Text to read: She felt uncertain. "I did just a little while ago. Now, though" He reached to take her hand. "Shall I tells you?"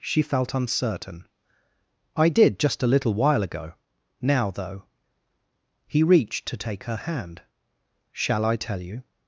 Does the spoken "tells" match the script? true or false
false